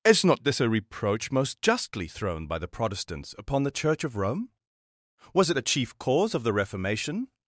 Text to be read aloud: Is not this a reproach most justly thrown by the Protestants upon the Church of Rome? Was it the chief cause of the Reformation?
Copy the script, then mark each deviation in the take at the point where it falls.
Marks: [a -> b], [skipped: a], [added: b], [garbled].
Is not this a reproach most justly thrown by the Protestants upon the Church of Rome? Was it the chief cause of the Reformation?